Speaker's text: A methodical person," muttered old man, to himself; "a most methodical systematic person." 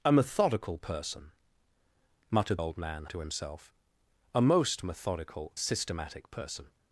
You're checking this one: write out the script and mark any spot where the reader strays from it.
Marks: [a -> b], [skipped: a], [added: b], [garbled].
A methodical person," muttered old man, to himself; "a most methodical systematic person."